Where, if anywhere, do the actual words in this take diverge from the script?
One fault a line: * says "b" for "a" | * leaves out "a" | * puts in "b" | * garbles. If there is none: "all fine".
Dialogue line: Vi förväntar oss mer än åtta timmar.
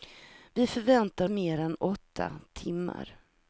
* leaves out "oss"